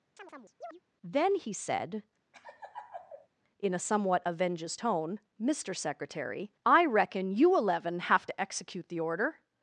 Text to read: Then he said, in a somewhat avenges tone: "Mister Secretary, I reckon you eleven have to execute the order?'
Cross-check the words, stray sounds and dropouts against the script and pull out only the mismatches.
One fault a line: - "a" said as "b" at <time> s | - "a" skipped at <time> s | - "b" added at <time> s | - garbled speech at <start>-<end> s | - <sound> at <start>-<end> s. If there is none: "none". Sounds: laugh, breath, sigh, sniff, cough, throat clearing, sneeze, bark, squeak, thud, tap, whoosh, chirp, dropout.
- chirp at 0.2-0.8 s
- laugh at 2.3-3.3 s